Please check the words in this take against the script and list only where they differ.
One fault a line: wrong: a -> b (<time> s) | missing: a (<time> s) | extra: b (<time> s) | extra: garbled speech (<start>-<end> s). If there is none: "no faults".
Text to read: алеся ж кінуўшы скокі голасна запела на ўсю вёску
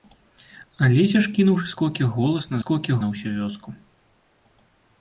wrong: запела -> скокі (2.6 s)